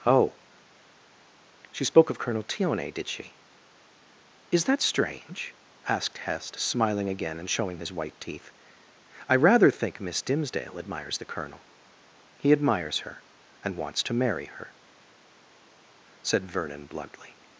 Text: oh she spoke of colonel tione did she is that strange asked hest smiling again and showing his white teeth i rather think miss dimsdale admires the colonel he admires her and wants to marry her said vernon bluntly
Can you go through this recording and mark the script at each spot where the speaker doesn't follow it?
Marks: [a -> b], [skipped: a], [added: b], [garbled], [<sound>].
oh she spoke of colonel tione did she is that strange asked hest smiling again and showing his white teeth i rather think miss dimsdale admires the colonel he admires her and wants to marry her said vernon bluntly